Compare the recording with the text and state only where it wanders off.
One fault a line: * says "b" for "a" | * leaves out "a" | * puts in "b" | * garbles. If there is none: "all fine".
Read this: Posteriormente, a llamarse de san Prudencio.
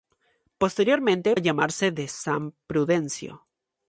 all fine